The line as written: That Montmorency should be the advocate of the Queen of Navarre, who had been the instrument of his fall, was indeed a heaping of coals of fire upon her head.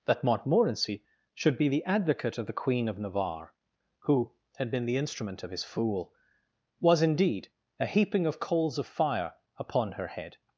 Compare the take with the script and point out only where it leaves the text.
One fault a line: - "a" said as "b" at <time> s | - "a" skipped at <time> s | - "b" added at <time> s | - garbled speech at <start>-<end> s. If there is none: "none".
- "fall" said as "fool" at 5.6 s